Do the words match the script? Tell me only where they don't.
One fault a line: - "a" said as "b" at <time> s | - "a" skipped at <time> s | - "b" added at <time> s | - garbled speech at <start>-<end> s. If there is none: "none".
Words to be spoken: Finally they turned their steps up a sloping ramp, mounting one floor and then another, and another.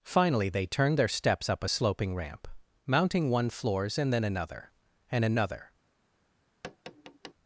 - "floor" said as "floors" at 3.5 s